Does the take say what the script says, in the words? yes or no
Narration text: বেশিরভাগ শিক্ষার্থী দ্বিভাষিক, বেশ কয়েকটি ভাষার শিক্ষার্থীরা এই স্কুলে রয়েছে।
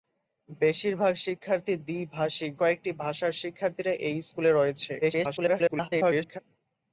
no